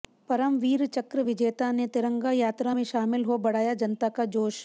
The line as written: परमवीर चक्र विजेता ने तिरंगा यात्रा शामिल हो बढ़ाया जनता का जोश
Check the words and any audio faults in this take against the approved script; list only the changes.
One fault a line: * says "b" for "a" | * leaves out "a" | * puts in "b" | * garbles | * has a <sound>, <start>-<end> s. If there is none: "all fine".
* puts in "में"